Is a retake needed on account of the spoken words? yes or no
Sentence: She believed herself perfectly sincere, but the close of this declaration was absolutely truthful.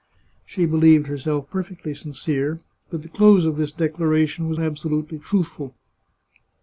no